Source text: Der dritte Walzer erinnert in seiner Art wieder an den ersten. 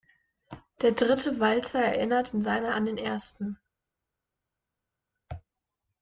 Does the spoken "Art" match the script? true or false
false